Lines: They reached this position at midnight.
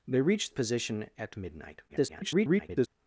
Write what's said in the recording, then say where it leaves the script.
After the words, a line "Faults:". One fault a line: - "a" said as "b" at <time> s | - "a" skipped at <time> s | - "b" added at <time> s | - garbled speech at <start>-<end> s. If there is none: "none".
They reached position at midnight. [garbled]
Faults:
- "this" skipped at 0.5 s
- garbled speech at 1.9-2.9 s